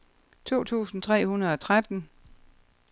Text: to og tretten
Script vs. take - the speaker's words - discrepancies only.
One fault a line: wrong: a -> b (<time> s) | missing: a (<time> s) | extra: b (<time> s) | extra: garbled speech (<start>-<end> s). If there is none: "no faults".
extra: tusind tre hundrede (0.6 s)